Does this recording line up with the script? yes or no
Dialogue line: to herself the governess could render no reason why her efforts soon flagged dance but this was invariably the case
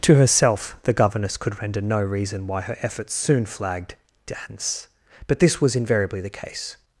yes